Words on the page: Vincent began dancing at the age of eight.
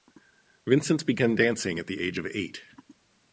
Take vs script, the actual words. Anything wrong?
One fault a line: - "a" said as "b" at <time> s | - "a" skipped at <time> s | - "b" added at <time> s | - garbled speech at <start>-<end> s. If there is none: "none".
none